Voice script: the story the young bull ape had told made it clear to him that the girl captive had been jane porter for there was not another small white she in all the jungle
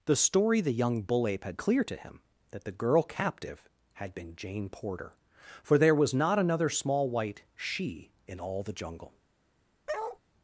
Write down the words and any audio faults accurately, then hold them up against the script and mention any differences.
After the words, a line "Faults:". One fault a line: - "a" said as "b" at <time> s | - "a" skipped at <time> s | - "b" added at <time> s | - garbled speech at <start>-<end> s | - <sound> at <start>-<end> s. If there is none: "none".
the story the young bull ape had clear to him that the girl captive had been jane porter for there was not another small white she in all the jungle
Faults:
- "told made it" skipped at 1.6 s
- bark at 9.9-10.2 s